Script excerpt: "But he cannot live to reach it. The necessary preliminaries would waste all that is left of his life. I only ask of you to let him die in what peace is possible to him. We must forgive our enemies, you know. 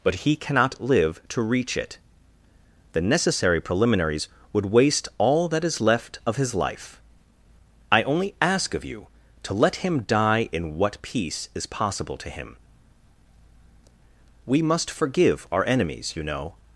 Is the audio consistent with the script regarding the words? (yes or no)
yes